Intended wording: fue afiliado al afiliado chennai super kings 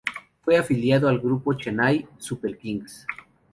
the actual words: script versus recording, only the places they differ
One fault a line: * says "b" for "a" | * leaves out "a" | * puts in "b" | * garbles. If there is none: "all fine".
* says "grupo" for "afiliado"